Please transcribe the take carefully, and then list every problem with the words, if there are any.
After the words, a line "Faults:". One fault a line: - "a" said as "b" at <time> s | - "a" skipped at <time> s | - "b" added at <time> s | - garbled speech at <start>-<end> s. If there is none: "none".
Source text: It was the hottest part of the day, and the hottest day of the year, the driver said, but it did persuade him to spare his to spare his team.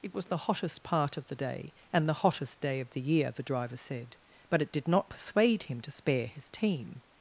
It was the hottest part of the day, and the hottest day of the year, the driver said, but it did not persuade him to spare his team.
Faults:
- "not" added at 4.9 s
- "to spare his" skipped at 6.5 s